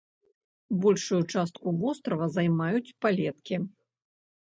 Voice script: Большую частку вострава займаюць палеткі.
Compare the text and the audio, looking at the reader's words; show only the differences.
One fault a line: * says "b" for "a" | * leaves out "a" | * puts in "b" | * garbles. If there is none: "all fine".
all fine